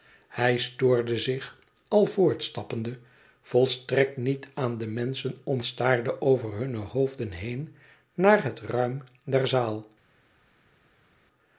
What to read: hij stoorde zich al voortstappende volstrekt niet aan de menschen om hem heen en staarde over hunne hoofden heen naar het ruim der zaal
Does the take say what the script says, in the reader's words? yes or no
no